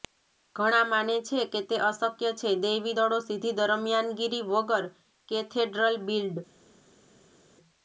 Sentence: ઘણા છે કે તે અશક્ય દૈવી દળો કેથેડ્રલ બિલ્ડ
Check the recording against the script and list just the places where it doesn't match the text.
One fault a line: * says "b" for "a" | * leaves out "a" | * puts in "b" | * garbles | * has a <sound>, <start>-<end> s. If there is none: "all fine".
* puts in "માને"
* puts in "છે"
* puts in "સીધી દરમિયાનગીરી વગર"